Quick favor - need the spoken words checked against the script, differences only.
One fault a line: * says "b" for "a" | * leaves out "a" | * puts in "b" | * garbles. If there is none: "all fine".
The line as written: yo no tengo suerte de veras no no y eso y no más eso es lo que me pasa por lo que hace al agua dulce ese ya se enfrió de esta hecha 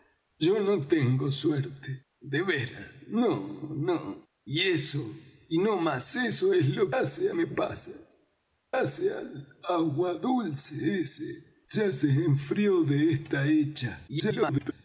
* says "hace" for "que"
* leaves out "por lo que"
* garbles